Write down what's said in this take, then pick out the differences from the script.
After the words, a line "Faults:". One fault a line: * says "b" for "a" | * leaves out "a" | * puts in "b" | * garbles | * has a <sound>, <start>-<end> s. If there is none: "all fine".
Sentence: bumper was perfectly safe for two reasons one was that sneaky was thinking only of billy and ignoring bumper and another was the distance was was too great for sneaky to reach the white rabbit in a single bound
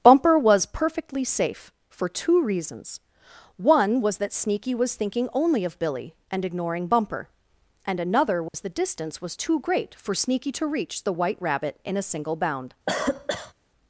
bumper was perfectly safe for two reasons one was that sneaky was thinking only of billy and ignoring bumper and another was the distance was too great for sneaky to reach the white rabbit in a single bound
Faults:
* has a dropout, 8.5-8.5 s
* leaves out "was"
* has a cough, 12.9-13.5 s